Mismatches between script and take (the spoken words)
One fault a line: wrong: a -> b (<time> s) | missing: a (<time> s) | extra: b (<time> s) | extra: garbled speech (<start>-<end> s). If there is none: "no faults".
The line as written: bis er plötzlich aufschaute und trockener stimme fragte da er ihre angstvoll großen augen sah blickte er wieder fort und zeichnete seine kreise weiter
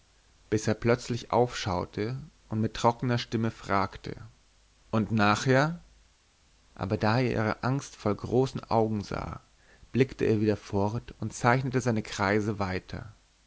extra: mit (2.6 s)
extra: und nachher aber (4.9 s)